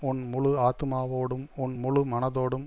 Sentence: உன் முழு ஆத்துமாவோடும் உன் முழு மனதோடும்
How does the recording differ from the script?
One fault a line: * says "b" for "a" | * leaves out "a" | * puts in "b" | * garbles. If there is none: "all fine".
all fine